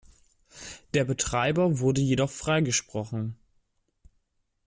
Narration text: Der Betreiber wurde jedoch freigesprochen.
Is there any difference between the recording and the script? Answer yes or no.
no